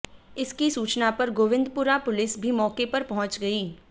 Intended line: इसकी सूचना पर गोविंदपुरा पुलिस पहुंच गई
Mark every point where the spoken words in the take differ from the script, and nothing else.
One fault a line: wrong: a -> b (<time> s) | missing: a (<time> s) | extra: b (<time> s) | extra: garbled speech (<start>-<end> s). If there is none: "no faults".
extra: भी मौके पर (2.4 s)